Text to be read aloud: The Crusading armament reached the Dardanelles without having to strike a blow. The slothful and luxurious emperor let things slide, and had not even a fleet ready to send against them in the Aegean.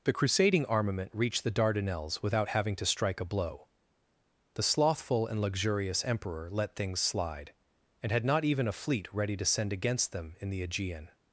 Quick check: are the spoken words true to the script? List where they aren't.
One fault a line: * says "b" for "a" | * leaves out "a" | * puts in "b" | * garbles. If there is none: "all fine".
all fine